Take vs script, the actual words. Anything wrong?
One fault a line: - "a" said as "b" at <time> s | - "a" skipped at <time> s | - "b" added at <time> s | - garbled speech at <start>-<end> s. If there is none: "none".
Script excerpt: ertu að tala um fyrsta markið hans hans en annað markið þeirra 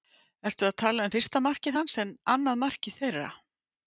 - "hans" skipped at 1.9 s